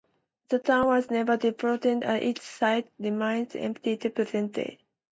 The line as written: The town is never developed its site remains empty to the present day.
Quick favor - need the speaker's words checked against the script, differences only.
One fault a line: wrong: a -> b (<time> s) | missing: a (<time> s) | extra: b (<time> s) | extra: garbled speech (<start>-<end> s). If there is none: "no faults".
wrong: is -> was (0.9 s)
extra: and (1.9 s)